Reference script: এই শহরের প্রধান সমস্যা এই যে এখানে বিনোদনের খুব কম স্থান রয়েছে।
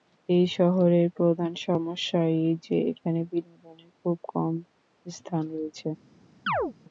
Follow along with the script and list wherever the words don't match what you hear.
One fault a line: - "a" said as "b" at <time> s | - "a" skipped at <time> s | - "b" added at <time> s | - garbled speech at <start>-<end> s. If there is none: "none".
none